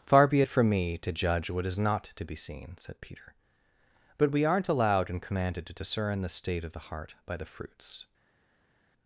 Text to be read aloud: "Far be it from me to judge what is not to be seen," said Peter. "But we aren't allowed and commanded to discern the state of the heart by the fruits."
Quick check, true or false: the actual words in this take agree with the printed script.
true